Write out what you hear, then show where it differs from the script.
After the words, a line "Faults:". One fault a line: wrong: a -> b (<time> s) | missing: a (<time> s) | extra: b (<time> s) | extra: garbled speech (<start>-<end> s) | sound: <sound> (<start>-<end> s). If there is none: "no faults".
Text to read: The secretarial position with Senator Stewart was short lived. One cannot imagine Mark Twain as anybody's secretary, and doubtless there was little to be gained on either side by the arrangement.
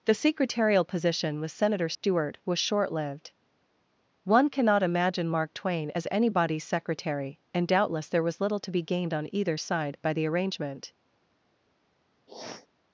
The secretarial position with Senator Stewart was short lived. One cannot imagine Mark Twain as anybody's secretary, and doubtless there was little to be gained on either side by the arrangement.
Faults:
sound: dropout (1.9-2.0 s)
sound: sniff (12.3-12.7 s)